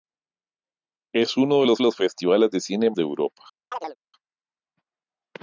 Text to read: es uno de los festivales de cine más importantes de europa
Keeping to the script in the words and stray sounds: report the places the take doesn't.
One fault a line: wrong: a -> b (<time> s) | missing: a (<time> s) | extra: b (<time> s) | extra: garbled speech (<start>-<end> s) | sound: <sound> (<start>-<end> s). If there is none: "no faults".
extra: los (1.8 s)
missing: más importantes (2.9 s)
sound: chirp (3.7-4.0 s)